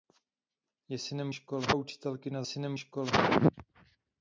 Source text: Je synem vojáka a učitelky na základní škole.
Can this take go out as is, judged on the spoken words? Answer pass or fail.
fail